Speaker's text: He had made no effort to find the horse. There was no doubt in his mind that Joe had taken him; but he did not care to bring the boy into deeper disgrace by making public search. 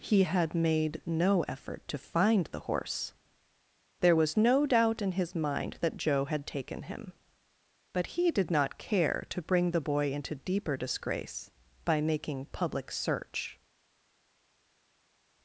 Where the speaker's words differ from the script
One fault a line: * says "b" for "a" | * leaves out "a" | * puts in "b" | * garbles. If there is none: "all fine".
all fine